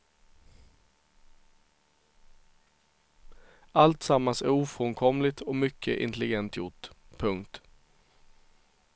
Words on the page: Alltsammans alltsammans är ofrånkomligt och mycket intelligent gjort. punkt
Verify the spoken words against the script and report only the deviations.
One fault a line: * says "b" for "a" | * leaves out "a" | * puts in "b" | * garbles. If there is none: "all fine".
* leaves out "alltsammans"